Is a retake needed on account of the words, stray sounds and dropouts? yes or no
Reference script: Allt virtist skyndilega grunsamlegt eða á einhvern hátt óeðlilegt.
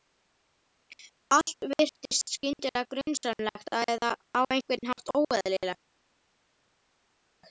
no